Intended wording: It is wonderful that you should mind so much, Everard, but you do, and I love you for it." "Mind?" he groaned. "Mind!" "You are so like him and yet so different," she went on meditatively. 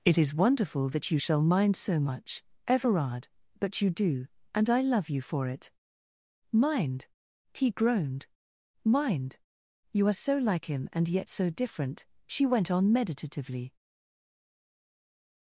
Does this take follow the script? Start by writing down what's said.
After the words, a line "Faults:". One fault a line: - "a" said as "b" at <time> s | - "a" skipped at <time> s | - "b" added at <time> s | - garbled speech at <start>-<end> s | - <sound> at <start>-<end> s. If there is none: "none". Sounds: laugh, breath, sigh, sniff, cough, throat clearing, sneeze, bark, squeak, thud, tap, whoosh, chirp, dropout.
It is wonderful that you shall mind so much, Everard, but you do, and I love you for it." "Mind?" he groaned. "Mind!" "You are so like him and yet so different," she went on meditatively.
Faults:
- "should" said as "shall" at 1.2 s